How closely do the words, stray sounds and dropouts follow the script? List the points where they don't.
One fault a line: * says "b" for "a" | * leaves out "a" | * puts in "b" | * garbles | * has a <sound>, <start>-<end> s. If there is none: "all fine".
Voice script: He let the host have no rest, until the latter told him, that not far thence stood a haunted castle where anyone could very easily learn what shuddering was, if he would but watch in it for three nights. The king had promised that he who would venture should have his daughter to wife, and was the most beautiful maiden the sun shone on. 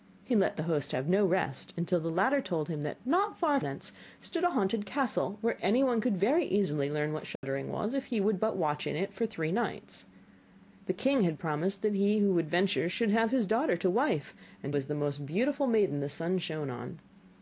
* has a dropout, 7.4-7.4 s